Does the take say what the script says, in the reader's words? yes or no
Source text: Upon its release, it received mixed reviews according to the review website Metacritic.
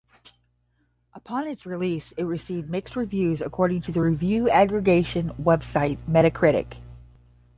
no